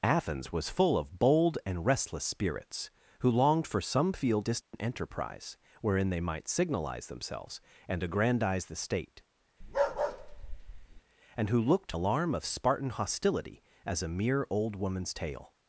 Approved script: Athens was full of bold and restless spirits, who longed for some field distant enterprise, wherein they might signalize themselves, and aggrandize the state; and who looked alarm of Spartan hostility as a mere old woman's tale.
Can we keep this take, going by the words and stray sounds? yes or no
no